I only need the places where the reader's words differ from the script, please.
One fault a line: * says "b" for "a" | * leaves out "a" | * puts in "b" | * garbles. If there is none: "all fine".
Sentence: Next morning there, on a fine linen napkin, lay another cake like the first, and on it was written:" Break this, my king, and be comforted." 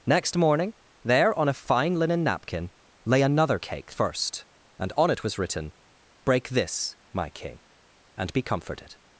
* leaves out "like the"